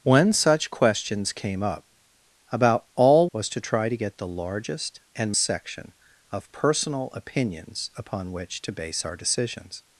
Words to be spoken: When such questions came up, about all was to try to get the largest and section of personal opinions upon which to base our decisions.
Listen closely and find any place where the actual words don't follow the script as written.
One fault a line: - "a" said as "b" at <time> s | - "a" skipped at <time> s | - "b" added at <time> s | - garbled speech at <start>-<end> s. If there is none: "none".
none